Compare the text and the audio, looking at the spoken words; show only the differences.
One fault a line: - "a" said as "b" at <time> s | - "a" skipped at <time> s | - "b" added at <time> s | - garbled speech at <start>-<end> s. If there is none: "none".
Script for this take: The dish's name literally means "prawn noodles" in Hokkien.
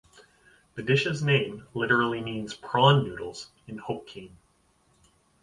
none